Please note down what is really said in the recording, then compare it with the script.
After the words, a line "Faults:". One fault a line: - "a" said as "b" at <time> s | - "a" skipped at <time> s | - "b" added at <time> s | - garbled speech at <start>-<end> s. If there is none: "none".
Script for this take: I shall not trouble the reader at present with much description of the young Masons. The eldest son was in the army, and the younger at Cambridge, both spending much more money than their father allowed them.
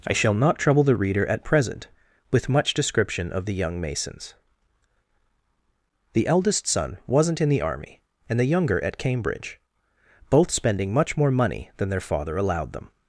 I shall not trouble the reader at present with much description of the young Masons. The eldest son wasn't in the army, and the younger at Cambridge, both spending much more money than their father allowed them.
Faults:
- "was" said as "wasn't" at 7.1 s